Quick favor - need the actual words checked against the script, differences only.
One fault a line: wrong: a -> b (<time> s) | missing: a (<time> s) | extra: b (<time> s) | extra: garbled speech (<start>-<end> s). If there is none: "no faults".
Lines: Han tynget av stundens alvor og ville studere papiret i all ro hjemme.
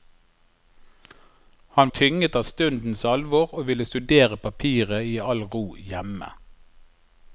no faults